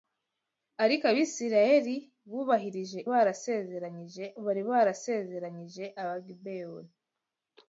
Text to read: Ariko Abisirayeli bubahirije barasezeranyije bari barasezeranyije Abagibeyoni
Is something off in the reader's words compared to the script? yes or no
no